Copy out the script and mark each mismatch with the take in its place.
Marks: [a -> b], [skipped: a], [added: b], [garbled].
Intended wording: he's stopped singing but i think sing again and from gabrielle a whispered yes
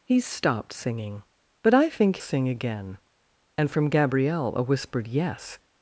he's stopped singing but i think sing again and from gabrielle a whispered yes